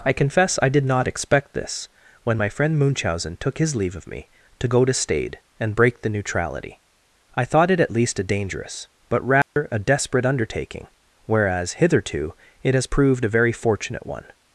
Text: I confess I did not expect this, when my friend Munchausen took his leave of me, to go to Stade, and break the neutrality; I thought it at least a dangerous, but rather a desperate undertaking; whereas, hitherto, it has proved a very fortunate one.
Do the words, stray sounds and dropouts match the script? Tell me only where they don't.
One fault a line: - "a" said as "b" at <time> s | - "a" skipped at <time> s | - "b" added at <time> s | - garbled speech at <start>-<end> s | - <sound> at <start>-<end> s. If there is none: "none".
- dropout at 9.4-9.6 s